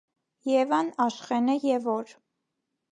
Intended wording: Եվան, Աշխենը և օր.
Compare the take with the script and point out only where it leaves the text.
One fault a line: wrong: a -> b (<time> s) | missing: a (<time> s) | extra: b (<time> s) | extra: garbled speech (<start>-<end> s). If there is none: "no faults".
no faults